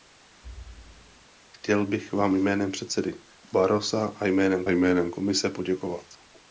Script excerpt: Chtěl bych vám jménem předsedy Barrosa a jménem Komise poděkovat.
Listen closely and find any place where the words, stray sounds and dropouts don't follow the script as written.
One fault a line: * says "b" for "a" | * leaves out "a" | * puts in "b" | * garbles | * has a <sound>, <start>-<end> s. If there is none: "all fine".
* has a thud, 0.4-1.3 s
* puts in "jménem"